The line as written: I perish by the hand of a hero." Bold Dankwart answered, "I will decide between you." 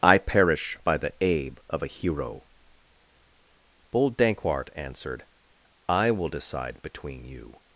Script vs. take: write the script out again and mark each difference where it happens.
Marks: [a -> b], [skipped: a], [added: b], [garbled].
I perish by the [hand -> abe] of a hero." Bold Dankwart answered, "I will decide between you."